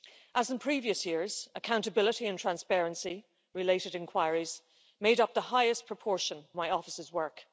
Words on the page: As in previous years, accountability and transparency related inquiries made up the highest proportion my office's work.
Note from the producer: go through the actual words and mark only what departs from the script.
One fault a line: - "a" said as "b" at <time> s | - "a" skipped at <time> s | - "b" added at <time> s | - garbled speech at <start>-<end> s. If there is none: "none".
none